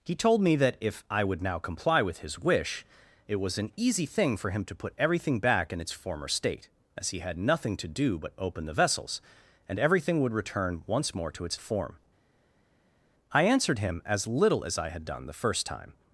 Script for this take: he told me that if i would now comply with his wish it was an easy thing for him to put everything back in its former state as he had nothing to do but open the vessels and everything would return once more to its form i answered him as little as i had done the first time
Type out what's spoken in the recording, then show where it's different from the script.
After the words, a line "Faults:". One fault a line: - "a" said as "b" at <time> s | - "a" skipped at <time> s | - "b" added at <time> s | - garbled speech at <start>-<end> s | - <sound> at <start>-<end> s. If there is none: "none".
he told me that if i would now comply with his wish it was an easy thing for him to put everything back in its former state as he had nothing to do but open the vessels and everything would return once more to its form i answered him as little as i had done the first time
Faults:
none